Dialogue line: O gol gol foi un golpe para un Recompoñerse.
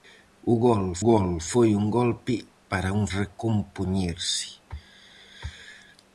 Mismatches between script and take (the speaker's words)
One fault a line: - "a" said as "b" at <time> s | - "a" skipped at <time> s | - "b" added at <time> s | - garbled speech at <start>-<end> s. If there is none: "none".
none